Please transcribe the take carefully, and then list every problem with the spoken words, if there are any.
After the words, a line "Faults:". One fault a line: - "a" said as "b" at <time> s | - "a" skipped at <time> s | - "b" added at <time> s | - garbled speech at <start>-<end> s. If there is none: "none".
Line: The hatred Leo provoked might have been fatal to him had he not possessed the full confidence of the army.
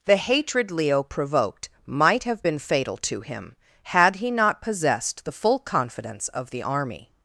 The hatred Leo provoked might have been fatal to him had he not possessed the full confidence of the army.
Faults:
none